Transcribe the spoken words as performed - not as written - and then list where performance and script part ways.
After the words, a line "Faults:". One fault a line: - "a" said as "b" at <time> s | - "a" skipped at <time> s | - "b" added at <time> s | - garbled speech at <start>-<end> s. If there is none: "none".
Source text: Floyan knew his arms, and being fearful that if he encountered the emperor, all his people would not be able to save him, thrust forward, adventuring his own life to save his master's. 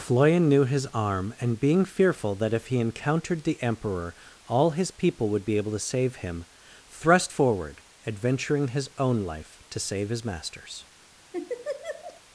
Floyan knew his arm, and being fearful that if he encountered the emperor, all his people would be able to save him, thrust forward, adventuring his own life to save his master's.
Faults:
- "arms" said as "arm" at 0.9 s
- "not" skipped at 5.5 s